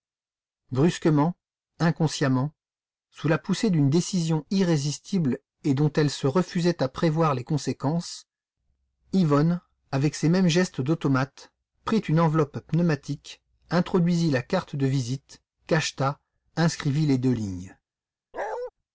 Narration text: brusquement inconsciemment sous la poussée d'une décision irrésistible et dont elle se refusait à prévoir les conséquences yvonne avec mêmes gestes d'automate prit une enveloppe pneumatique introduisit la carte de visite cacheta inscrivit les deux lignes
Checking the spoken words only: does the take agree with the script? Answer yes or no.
no